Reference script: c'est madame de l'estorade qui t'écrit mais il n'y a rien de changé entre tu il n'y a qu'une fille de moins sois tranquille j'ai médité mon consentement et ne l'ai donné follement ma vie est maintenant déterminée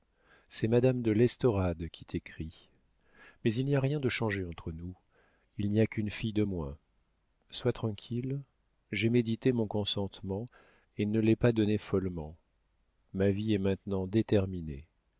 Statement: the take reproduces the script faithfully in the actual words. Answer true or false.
false